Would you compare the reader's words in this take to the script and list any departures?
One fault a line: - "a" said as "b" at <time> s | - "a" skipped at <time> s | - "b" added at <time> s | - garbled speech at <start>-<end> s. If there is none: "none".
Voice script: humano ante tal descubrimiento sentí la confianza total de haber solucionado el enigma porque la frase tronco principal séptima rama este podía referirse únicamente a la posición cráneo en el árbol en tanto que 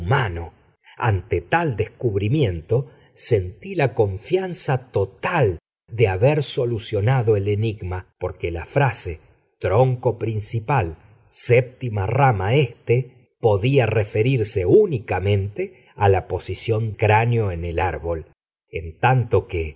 none